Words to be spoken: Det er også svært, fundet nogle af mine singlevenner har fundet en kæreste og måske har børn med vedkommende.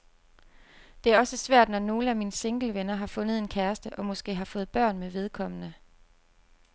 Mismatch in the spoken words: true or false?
true